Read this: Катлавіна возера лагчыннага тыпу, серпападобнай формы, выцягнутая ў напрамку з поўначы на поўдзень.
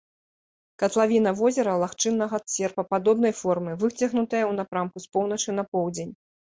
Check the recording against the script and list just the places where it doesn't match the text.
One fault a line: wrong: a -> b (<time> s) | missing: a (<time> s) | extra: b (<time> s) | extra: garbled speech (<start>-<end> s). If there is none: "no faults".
missing: тыпу (2.4 s)